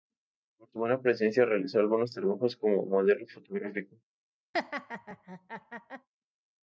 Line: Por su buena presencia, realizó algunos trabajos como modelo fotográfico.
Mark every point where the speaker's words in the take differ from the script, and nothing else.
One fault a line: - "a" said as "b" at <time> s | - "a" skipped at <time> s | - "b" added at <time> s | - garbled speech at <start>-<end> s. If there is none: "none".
none